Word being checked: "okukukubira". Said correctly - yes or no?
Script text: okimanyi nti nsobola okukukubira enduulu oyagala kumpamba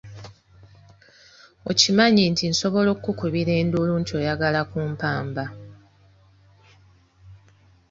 yes